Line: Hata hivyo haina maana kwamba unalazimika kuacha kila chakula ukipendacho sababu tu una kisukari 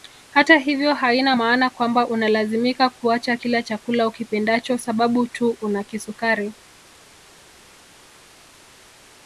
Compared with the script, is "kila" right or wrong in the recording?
right